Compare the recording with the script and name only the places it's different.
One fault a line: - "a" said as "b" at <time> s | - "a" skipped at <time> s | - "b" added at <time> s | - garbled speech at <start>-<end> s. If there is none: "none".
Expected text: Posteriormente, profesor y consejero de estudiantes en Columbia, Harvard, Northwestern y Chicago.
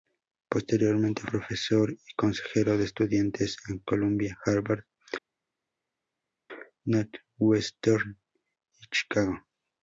none